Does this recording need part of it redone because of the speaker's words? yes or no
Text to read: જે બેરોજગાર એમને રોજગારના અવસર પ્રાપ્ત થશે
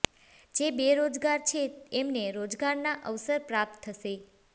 yes